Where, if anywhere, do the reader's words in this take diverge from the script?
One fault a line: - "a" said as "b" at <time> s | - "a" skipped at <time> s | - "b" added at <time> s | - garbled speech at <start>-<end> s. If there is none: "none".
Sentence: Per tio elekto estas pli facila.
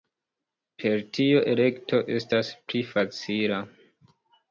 none